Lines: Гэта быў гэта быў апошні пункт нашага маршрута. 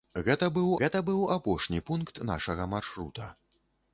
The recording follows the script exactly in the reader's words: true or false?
true